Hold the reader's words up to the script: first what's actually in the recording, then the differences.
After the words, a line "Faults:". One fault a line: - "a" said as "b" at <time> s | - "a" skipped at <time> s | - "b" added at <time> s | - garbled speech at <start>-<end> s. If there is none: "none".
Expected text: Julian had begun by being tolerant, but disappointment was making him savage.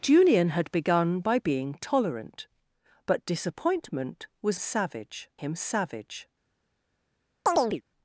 Julian had begun by being tolerant, but disappointment was savage him savage.
Faults:
- "making" said as "savage" at 4.5 s